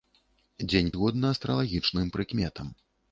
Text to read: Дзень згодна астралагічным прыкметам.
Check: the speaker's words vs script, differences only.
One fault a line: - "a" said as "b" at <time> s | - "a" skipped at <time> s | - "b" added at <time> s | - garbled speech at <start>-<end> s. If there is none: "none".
none